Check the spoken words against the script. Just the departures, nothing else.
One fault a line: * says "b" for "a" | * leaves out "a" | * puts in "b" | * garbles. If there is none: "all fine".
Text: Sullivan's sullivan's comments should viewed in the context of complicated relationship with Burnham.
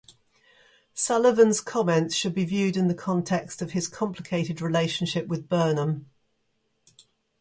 * leaves out "sullivan's"
* puts in "be"
* puts in "his"